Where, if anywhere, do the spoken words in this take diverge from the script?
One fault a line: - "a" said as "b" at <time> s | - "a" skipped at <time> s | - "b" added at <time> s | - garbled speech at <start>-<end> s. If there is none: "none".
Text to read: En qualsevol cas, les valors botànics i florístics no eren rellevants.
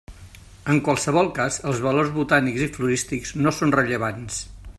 - "les" said as "els" at 1.7 s
- "eren" said as "són" at 3.6 s